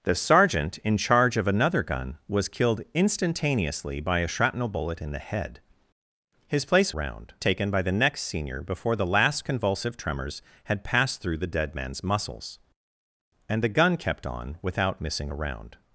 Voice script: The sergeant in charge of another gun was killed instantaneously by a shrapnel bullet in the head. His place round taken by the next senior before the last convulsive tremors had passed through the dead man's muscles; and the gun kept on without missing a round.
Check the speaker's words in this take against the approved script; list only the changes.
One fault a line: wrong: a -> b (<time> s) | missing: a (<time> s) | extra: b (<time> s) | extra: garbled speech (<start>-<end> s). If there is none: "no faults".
no faults